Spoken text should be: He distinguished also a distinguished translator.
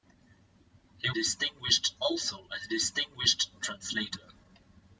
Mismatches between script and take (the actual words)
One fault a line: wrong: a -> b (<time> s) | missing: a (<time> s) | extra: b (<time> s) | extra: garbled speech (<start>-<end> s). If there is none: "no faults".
no faults